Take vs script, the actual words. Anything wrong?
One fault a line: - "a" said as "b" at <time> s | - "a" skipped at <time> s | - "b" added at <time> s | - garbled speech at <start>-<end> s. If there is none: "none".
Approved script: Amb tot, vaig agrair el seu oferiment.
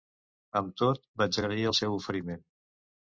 none